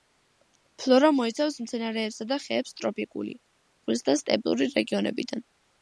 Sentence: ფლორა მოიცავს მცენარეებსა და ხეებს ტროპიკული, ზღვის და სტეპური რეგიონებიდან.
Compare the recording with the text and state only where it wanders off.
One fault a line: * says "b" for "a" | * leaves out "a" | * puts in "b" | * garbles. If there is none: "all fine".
all fine